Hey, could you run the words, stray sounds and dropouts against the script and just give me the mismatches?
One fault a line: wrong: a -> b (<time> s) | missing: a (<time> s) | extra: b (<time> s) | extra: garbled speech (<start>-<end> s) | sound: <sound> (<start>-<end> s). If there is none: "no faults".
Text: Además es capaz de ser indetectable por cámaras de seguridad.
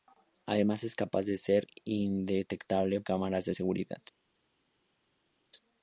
missing: por (3.0 s)